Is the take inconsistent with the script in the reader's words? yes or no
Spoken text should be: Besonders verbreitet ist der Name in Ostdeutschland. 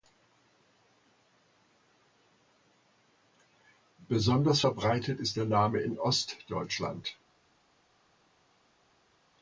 no